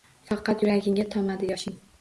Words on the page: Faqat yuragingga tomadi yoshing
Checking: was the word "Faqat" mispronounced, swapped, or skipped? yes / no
no